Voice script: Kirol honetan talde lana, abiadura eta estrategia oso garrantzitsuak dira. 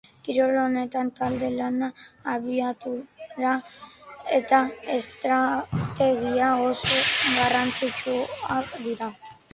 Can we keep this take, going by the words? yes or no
yes